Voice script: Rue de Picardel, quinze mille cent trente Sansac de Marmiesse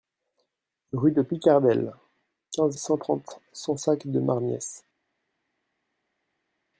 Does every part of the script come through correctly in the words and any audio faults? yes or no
no